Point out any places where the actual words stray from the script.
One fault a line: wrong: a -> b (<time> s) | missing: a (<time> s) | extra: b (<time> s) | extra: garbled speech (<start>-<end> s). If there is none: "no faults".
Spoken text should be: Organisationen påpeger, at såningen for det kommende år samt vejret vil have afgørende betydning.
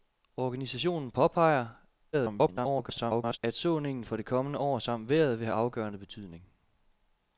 extra: garbled speech (2.1-3.4 s)